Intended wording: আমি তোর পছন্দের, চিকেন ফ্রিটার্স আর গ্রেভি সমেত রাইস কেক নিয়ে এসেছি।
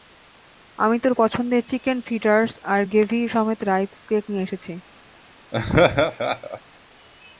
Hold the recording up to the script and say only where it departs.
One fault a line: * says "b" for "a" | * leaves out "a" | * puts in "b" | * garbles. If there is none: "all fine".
all fine